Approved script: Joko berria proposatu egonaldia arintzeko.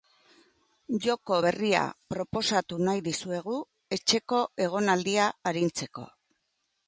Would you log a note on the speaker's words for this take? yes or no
yes